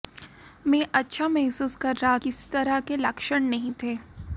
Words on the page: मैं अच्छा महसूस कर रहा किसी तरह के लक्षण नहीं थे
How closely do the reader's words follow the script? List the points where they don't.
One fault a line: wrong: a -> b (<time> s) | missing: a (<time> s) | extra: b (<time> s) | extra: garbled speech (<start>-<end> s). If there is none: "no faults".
no faults